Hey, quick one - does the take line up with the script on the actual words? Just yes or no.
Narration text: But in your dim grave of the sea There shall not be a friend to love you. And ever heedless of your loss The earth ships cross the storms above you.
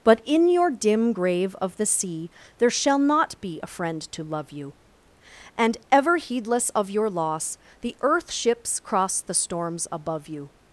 yes